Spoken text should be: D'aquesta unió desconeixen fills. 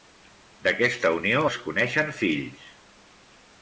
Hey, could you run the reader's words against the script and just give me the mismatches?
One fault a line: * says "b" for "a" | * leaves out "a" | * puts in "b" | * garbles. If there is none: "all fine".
all fine